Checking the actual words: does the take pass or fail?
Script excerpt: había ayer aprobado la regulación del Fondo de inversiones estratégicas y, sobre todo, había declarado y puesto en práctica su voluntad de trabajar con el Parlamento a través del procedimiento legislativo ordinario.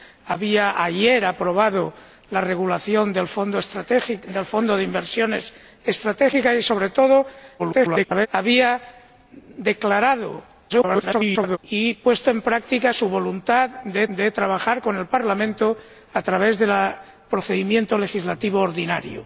fail